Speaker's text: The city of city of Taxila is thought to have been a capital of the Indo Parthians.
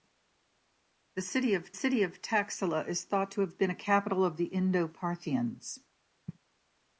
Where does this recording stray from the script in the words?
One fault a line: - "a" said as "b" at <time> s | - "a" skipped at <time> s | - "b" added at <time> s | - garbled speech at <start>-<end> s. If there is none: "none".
none